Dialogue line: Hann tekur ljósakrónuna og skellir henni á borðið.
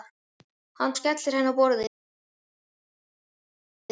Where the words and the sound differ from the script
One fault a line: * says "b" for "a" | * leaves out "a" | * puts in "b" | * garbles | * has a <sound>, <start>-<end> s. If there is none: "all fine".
* leaves out "tekur ljósakrónuna"